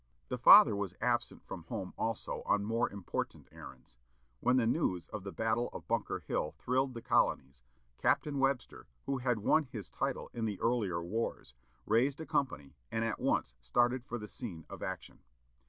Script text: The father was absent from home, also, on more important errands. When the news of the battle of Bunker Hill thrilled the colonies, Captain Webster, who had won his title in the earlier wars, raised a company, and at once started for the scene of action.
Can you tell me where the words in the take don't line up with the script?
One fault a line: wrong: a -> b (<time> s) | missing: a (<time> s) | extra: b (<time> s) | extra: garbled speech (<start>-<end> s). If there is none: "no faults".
no faults